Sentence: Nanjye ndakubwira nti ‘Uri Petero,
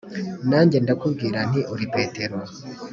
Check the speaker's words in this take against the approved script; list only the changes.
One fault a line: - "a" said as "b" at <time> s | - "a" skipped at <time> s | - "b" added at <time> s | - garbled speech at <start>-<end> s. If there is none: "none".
none